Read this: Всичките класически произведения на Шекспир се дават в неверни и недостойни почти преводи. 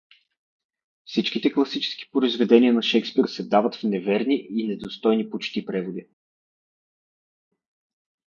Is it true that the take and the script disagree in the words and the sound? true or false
false